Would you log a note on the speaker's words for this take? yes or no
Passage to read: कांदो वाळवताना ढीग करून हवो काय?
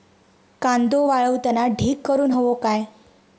no